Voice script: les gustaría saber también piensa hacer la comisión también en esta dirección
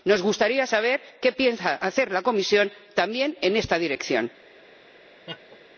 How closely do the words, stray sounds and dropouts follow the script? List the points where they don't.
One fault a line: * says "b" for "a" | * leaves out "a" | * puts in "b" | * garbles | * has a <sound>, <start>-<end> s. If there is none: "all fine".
* says "nos" for "les"
* says "qué" for "también"
* has a laugh, 5.3-5.6 s